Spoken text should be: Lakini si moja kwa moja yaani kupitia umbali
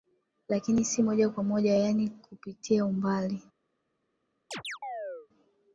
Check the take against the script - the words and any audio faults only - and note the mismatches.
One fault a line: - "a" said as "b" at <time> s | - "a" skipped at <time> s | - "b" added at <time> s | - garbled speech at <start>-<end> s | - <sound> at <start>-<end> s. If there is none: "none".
- chirp at 4.5-5.3 s